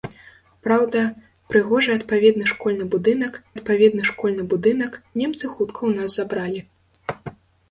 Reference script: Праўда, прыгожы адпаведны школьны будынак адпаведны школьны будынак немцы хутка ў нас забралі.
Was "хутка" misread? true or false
false